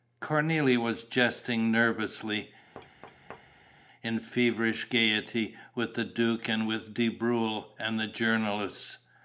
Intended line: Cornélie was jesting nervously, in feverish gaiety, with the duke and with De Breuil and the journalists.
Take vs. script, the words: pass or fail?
pass